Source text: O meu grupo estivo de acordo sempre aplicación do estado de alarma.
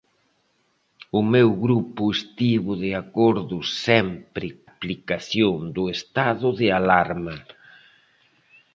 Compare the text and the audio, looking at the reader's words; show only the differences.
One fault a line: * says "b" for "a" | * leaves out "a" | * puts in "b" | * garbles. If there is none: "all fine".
all fine